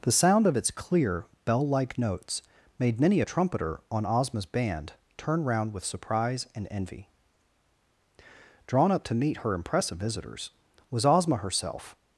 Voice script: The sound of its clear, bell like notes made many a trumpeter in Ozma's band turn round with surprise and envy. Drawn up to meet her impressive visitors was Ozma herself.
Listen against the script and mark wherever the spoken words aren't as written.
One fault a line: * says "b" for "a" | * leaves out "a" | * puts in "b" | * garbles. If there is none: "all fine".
* says "on" for "in"